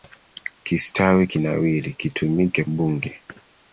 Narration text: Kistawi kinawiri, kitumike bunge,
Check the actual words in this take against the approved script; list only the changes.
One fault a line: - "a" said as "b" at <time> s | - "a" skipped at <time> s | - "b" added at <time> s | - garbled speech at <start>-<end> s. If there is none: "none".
none